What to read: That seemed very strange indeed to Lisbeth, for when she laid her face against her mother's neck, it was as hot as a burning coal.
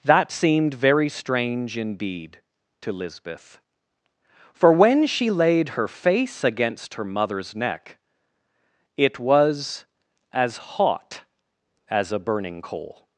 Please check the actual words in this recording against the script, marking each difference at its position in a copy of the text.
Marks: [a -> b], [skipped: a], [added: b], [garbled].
That seemed very strange indeed to Lisbeth, for when she laid her face against her mother's neck, it was as hot as a burning coal.